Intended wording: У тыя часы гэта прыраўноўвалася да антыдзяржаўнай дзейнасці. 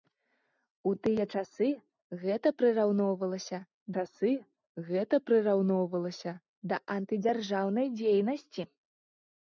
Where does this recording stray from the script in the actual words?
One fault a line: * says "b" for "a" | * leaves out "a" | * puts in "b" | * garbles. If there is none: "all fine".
* puts in "часы гэта прыраўноўвалася"